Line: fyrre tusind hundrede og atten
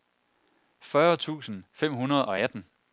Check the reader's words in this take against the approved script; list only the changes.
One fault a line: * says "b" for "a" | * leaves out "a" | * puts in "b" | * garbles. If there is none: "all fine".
* puts in "fem"